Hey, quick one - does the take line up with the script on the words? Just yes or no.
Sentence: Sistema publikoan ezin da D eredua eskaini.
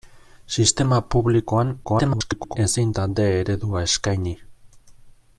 no